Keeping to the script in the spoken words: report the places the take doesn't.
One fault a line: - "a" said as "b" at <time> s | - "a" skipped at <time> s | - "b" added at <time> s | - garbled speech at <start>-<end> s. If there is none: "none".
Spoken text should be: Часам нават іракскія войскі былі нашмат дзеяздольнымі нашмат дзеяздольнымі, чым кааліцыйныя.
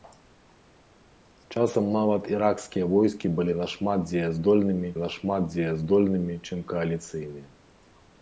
none